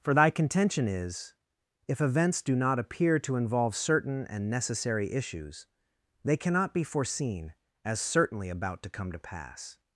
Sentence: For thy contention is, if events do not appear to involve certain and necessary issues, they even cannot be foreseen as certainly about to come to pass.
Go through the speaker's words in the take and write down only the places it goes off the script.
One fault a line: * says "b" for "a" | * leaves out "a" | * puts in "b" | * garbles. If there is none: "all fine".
* leaves out "even"